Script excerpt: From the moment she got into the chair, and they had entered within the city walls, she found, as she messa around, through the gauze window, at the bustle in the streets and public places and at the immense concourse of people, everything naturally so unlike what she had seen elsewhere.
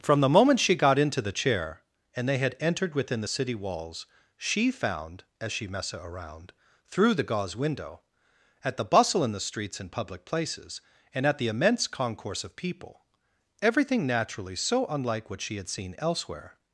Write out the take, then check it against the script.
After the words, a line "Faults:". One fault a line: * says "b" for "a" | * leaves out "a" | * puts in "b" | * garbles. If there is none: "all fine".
From the moment she got into the chair, and they had entered within the city walls, she found, as she messa around, through the gauze window, at the bustle in the streets and public places and at the immense concourse of people, everything naturally so unlike what she had seen elsewhere.
Faults:
all fine